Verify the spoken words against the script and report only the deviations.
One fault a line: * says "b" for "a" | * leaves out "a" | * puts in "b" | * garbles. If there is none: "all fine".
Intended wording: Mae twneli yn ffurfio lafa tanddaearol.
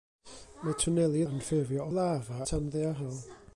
all fine